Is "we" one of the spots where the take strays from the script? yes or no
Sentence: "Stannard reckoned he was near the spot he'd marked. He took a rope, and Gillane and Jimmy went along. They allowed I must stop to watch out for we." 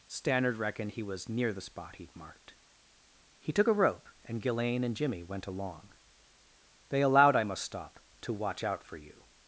yes